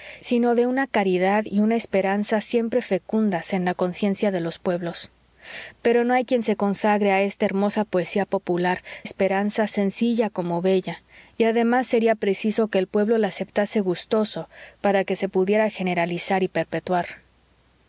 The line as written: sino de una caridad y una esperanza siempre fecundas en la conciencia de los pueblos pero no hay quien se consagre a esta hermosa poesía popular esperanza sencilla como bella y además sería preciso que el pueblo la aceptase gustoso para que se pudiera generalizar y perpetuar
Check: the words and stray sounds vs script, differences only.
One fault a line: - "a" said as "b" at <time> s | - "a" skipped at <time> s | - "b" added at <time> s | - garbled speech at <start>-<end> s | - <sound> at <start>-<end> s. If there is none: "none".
none